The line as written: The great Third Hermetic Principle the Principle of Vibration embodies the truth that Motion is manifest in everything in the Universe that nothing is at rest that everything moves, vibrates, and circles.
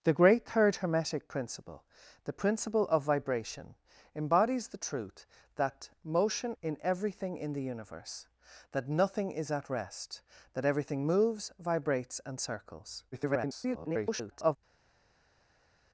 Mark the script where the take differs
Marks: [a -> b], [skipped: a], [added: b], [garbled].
The great Third Hermetic Principle the Principle of Vibration embodies the truth that Motion [skipped: is manifest] in everything in the Universe that nothing is at rest that everything moves, vibrates, and circles. [garbled]